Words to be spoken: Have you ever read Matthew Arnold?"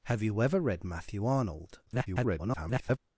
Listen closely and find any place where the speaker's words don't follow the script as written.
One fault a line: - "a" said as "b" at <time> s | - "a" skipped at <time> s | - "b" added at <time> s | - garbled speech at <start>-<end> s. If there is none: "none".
- garbled speech at 1.9-3.0 s